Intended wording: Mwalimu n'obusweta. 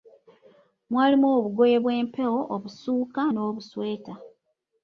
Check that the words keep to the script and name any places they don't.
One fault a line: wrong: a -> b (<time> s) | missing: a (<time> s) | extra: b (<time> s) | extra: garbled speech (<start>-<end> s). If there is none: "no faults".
extra: obugoye bw'empewo obusuuka (1.4 s)